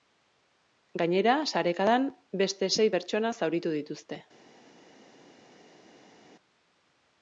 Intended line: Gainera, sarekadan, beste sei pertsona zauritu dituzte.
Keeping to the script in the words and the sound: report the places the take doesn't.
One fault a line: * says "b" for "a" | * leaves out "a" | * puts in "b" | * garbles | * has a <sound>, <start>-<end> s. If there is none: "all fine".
all fine